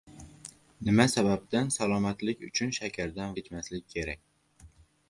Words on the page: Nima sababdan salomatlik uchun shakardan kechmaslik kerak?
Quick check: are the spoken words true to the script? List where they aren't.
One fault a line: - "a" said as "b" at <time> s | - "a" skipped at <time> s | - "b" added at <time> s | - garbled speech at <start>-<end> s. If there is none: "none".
none